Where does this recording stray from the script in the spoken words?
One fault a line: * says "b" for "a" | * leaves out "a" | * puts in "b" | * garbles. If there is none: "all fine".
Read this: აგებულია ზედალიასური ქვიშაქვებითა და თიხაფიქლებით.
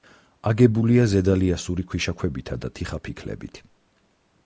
all fine